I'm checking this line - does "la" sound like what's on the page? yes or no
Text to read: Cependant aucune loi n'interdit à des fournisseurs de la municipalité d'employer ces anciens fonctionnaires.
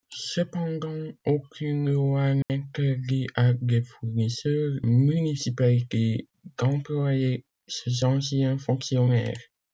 no